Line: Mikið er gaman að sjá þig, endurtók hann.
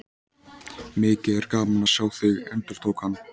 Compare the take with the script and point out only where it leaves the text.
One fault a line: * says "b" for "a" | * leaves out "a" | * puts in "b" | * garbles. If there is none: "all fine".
all fine